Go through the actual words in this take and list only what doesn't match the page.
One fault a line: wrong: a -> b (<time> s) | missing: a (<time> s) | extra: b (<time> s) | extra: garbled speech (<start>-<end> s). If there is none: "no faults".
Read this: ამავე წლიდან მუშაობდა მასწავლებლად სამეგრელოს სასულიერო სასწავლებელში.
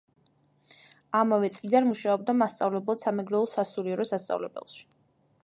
no faults